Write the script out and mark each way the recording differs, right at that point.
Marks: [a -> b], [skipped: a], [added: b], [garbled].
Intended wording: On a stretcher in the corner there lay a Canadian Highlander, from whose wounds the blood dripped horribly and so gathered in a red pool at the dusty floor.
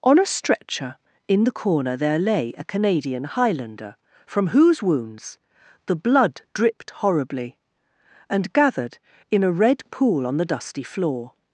On a stretcher in the corner there lay a Canadian Highlander, from whose wounds the blood dripped horribly and [skipped: so] gathered in a red pool [at -> on] the dusty floor.